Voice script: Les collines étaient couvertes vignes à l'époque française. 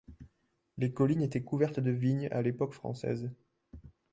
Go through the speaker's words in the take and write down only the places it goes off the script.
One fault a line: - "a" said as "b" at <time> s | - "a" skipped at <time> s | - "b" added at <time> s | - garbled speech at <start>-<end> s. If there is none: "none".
- "de" added at 1.8 s